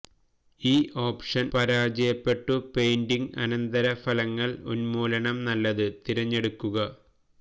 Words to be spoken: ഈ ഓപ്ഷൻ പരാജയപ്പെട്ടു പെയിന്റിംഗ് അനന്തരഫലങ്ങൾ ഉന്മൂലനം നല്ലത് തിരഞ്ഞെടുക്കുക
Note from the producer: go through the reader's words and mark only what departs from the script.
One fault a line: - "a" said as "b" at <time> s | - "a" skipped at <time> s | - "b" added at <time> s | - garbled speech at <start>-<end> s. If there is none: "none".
none